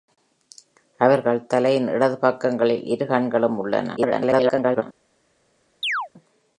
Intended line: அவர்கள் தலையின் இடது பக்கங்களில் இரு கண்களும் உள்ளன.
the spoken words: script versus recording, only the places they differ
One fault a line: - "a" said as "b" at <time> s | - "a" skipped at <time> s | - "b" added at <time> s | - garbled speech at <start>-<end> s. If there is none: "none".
- garbled speech at 4.0-4.8 s